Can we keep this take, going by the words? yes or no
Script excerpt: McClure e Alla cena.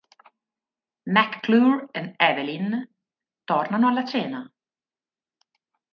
no